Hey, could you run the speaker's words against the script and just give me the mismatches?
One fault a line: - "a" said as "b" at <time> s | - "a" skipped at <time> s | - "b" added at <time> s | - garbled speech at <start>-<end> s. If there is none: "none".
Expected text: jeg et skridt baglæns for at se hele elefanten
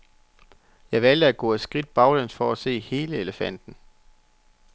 - "valgte at gå" added at 1.0 s